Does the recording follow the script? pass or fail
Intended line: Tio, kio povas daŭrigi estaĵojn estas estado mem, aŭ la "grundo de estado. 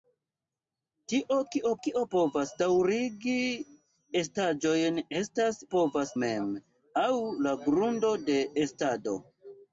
fail